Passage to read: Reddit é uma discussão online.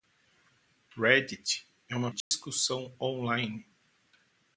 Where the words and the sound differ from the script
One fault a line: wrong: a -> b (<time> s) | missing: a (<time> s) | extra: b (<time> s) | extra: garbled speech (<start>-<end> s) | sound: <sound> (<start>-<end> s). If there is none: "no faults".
sound: dropout (2.2-2.3 s)